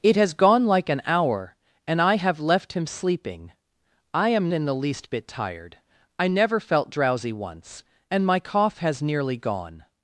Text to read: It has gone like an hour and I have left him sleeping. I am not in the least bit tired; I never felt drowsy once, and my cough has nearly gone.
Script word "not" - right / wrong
wrong